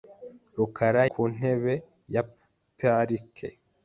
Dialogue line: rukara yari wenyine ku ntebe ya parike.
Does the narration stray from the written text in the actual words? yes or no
yes